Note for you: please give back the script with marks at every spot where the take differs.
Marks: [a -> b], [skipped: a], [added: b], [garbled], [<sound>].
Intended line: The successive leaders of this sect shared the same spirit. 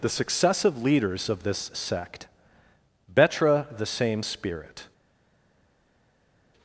The successive leaders of this sect [shared -> betra] the same spirit.